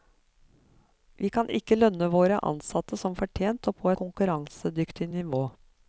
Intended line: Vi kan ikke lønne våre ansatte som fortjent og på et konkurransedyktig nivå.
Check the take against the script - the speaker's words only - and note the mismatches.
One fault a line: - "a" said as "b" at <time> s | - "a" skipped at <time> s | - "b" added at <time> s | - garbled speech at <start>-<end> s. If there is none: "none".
- "et" skipped at 3.9 s